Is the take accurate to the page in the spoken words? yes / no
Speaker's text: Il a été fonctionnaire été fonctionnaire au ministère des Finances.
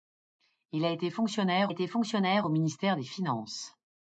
yes